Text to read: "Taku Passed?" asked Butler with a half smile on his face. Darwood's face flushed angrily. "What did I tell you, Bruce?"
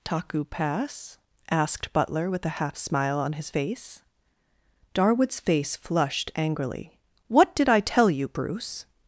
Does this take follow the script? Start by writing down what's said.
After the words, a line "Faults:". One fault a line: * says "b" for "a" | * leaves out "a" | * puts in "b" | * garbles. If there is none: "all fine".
"Taku Pass?" asked Butler with a half smile on his face. Darwood's face flushed angrily. "What did I tell you, Bruce?"
Faults:
* says "Pass" for "Passed"